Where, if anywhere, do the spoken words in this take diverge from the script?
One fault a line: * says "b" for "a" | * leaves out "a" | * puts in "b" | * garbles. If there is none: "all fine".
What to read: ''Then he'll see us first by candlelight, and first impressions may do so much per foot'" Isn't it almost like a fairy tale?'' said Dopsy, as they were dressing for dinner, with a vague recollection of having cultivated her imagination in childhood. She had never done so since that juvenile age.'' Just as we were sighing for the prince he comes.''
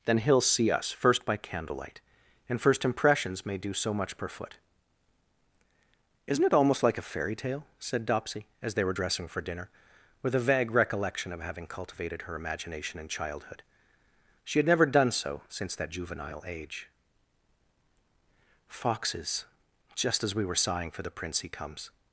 * puts in "foxes"